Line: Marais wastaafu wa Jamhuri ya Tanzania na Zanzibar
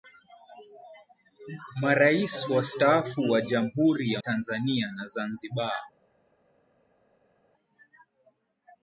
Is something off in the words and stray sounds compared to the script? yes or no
no